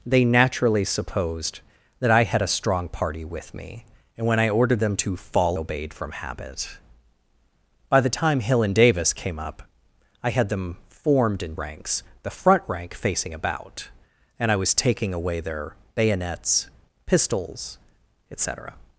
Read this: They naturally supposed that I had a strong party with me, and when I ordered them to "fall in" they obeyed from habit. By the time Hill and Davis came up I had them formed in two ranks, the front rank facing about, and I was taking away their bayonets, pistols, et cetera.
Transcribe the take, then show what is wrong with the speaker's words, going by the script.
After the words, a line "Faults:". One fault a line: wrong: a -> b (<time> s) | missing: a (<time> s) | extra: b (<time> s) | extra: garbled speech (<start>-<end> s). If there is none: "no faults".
They naturally supposed that I had a strong party with me, and when I ordered them to "fall obeyed from habit. By the time Hill and Davis came up I had them formed in ranks, the front rank facing about, and I was taking away their bayonets, pistols, et cetera.
Faults:
missing: in they (5.6 s)
missing: two (11.6 s)